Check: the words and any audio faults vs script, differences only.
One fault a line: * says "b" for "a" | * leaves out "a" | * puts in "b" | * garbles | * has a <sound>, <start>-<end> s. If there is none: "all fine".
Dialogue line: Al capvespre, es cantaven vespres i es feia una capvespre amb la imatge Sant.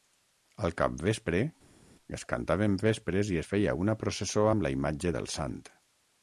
* says "processó" for "capvespre"
* puts in "del"